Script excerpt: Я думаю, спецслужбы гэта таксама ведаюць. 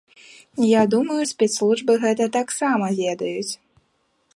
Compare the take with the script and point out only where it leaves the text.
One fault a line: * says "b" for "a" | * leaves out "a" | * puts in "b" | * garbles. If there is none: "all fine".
all fine